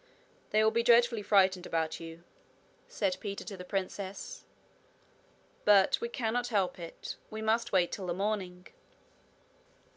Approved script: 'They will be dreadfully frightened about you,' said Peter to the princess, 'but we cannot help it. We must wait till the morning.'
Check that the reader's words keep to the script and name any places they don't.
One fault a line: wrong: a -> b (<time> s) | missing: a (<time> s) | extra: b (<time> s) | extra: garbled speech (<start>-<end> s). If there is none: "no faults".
no faults